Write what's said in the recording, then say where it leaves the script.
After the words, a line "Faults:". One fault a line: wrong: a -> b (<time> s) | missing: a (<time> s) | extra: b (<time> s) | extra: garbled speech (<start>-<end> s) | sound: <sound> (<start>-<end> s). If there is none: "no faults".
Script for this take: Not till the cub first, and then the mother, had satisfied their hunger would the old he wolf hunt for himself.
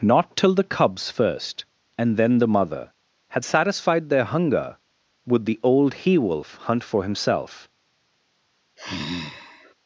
Not till the cubs first, and then the mother, had satisfied their hunger would the old he wolf hunt for himself.
Faults:
wrong: cub -> cubs (0.6 s)
sound: sigh (8.8-9.7 s)